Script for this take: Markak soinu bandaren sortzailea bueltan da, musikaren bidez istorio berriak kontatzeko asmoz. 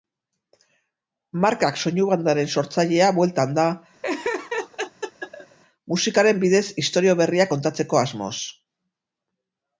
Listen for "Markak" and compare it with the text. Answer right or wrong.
right